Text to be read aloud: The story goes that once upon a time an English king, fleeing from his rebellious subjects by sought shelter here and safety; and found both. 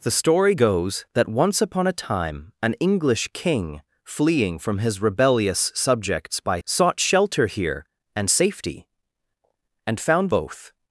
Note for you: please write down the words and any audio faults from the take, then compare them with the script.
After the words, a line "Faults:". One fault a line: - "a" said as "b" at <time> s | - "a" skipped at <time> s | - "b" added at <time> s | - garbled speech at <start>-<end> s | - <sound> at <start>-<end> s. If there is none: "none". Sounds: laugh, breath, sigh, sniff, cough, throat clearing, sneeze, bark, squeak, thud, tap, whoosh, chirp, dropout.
The story goes that once upon a time an English king, fleeing from his rebellious subjects by sought shelter here and safety; and found both.
Faults:
none